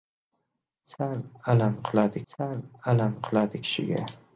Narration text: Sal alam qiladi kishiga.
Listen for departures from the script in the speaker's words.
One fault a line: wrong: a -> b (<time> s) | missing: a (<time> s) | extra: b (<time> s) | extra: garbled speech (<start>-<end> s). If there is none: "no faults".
extra: sal alam qiladi (2.3 s)